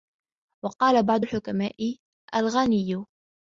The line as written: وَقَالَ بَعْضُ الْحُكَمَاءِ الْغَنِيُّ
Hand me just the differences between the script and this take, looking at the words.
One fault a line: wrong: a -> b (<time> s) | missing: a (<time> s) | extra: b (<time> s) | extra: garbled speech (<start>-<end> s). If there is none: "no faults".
no faults